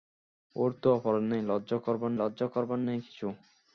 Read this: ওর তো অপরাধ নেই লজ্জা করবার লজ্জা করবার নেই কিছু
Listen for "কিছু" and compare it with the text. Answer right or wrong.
right